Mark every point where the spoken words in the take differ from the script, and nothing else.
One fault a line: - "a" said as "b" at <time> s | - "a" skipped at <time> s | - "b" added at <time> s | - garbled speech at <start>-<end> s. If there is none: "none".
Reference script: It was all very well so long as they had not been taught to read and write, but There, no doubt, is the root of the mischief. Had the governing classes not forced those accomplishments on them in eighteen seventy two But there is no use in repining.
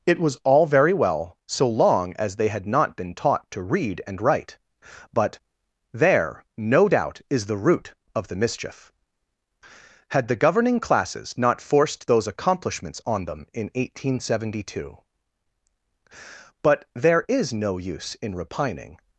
none